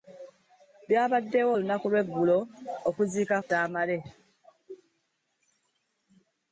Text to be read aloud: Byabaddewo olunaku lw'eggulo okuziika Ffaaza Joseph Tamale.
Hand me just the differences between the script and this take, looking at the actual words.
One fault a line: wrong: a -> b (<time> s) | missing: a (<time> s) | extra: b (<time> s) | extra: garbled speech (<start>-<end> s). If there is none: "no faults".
missing: Ffaaza Joseph (3.3 s)